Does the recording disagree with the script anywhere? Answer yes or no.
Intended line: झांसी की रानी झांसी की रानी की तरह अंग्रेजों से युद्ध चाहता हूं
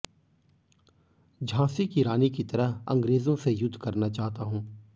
yes